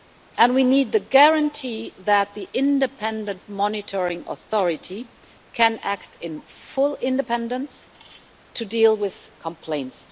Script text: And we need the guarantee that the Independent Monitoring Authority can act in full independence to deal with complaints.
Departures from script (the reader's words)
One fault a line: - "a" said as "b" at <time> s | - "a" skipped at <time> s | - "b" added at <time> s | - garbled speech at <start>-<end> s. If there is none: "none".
none